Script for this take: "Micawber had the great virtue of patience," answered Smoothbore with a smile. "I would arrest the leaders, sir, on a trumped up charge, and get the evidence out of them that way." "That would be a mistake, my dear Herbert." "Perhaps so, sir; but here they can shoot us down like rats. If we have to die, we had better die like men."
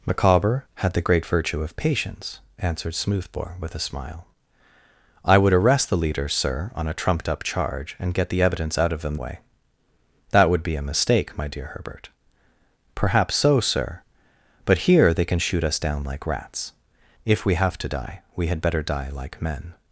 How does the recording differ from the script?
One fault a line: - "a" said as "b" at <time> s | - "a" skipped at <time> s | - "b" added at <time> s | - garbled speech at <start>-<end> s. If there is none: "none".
- "that" skipped at 9.2 s